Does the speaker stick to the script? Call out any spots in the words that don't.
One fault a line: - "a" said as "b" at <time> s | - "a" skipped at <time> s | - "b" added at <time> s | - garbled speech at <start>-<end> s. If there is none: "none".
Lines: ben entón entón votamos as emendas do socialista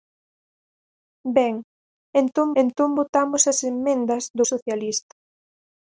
none